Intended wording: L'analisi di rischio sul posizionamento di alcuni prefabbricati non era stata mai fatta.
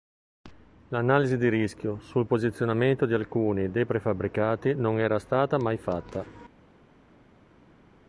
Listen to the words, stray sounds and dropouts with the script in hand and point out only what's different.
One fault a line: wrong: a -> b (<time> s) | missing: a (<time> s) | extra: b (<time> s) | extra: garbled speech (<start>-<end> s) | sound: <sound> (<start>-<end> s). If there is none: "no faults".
extra: dei (3.7 s)